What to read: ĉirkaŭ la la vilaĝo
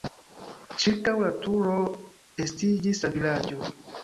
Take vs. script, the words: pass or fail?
fail